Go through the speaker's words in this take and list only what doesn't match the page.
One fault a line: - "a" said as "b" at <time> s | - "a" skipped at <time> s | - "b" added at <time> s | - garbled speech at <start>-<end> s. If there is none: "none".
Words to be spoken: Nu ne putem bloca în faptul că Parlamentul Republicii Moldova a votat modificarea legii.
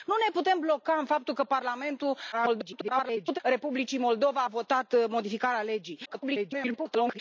- garbled speech at 2.3-3.4 s
- garbled speech at 6.0-7.2 s